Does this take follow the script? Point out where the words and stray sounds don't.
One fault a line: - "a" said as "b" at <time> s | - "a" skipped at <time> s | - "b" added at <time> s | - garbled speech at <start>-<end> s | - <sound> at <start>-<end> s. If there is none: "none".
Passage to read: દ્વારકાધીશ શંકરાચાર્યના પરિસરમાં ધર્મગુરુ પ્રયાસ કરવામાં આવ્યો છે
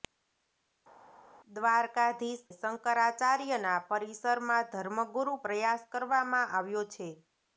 none